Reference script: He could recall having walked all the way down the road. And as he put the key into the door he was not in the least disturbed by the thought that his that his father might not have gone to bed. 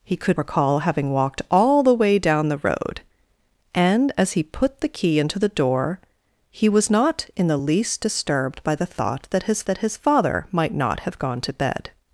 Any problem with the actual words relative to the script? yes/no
no